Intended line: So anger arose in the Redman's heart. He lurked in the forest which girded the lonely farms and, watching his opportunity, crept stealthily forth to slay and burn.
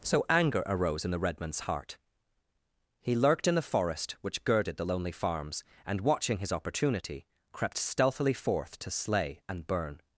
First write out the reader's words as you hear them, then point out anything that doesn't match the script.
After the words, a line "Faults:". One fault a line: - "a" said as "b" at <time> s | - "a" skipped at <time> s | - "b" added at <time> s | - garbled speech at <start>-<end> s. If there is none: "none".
So anger arose in the Redman's heart. He lurked in the forest which girded the lonely farms and, watching his opportunity, crept stealthily forth to slay and burn.
Faults:
none